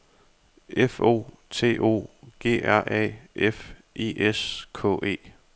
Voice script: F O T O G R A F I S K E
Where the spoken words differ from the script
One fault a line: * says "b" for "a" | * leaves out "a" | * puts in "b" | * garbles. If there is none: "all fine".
all fine